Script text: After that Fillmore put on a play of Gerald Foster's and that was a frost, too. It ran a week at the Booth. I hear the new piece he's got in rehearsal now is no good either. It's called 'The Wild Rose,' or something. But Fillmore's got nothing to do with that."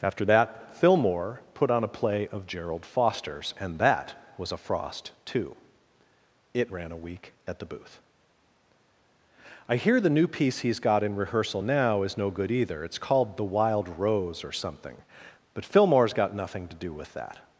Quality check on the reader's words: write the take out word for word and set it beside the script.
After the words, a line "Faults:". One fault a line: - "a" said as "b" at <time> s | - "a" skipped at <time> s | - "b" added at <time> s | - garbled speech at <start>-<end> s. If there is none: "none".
After that Fillmore put on a play of Gerald Foster's and that was a frost, too. It ran a week at the Booth. I hear the new piece he's got in rehearsal now is no good either. It's called 'The Wild Rose,' or something. But Fillmore's got nothing to do with that."
Faults:
none